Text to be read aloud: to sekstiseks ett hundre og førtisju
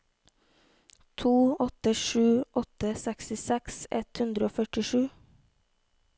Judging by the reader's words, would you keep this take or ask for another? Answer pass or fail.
fail